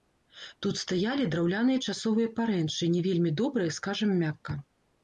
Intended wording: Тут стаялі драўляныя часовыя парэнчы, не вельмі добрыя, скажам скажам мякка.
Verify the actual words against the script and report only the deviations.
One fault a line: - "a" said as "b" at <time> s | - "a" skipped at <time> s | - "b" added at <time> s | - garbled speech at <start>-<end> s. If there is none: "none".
- "скажам" skipped at 4.2 s